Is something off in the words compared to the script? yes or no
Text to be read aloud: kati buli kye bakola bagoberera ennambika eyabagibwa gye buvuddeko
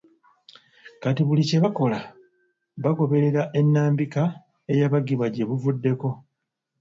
no